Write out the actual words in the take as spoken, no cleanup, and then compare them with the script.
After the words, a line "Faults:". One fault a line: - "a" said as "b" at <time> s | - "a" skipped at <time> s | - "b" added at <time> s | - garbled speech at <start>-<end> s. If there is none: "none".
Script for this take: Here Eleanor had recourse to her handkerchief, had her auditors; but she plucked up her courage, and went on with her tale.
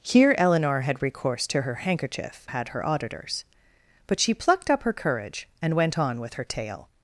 Here Eleanor had recourse to her handkerchief, had her auditors; but she plucked up her courage, and went on with her tale.
Faults:
none